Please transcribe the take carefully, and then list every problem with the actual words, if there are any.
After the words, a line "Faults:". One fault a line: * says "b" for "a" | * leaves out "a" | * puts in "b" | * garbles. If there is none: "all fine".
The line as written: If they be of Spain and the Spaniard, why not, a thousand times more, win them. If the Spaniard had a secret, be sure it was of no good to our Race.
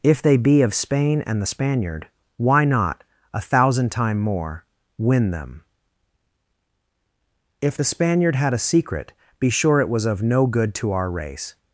If they be of Spain and the Spaniard, why not, a thousand time more, win them. If the Spaniard had a secret, be sure it was of no good to our Race.
Faults:
* says "time" for "times"